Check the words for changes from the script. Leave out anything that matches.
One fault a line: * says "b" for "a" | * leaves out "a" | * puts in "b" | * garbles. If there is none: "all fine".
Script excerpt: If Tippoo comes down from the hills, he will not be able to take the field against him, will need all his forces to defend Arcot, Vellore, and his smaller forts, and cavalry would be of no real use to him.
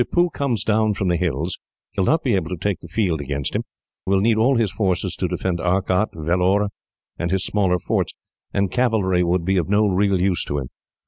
all fine